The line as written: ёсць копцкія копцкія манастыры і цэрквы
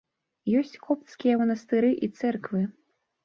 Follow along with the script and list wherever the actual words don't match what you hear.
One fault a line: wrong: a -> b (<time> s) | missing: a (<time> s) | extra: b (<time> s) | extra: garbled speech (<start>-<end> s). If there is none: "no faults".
missing: копцкія (1.4 s)